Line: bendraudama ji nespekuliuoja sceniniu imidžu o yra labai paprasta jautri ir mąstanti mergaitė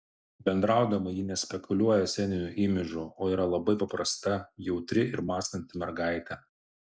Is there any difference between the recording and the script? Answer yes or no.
no